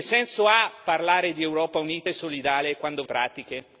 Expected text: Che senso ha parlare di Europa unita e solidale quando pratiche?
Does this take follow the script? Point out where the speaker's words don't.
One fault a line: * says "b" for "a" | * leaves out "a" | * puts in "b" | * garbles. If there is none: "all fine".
all fine